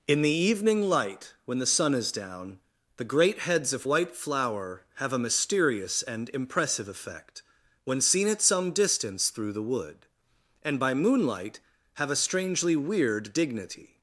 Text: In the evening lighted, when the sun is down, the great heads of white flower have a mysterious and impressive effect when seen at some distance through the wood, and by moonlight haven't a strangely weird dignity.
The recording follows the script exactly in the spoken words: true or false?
false